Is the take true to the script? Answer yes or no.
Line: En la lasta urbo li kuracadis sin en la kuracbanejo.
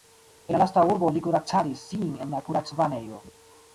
yes